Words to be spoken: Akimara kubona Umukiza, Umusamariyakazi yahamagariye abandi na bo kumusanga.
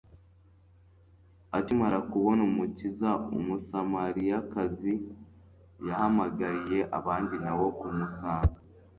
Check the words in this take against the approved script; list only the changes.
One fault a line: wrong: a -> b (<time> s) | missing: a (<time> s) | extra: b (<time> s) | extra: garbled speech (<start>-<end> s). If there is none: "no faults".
no faults